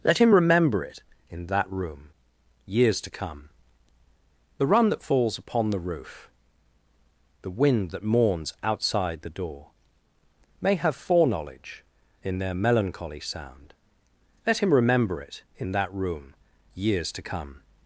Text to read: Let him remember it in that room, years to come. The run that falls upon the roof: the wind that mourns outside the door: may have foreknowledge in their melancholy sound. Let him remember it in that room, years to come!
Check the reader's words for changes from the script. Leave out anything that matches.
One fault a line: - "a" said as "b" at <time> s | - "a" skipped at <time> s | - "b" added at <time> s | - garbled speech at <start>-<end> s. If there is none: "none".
none